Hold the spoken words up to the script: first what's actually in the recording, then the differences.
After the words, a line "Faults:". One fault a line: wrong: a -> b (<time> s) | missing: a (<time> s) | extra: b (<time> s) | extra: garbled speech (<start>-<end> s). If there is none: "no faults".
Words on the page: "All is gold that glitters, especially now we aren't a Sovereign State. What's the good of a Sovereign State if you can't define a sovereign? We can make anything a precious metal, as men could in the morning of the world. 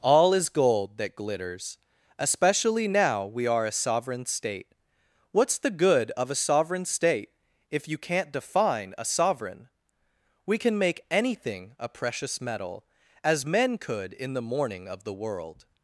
"All is gold that glitters, especially now we are a Sovereign State. What's the good of a Sovereign State if you can't define a sovereign? We can make anything a precious metal, as men could in the morning of the world.
Faults:
wrong: aren't -> are (3.5 s)